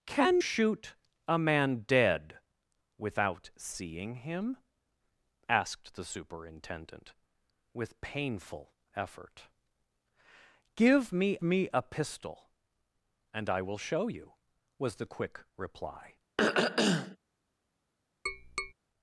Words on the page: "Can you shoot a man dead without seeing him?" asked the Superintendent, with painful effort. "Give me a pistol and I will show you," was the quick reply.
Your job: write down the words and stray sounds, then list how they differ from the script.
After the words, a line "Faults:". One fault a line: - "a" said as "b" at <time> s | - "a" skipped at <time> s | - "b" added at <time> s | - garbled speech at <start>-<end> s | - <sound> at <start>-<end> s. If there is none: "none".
"Can shoot a man dead without seeing him?" asked the Superintendent, with painful effort. "Give me me a pistol and I will show you," was the quick reply.
Faults:
- "you" skipped at 0.4 s
- "me" added at 11.4 s
- throat clearing at 16.4-17.2 s
- tap at 18.3-18.7 s